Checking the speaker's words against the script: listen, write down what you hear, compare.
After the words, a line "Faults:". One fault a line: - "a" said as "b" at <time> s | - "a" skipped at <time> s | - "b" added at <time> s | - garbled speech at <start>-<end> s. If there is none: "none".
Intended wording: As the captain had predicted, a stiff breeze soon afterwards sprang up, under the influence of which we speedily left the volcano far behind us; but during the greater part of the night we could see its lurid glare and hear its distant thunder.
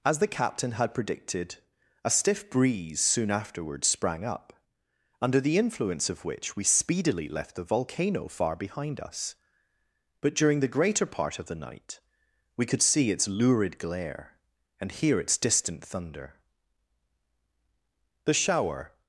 As the captain had predicted, a stiff breeze soon afterwards sprang up, under the influence of which we speedily left the volcano far behind us; but during the greater part of the night we could see its lurid glare and hear its distant thunder. The shower
Faults:
- "The shower" added at 18.2 s